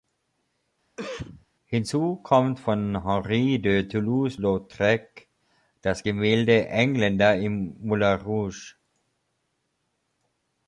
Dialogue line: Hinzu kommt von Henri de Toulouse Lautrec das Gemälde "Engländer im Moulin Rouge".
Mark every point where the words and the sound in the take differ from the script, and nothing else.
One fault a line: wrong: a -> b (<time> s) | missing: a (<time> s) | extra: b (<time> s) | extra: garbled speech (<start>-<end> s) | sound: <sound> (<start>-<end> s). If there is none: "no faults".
sound: cough (1.0-1.5 s)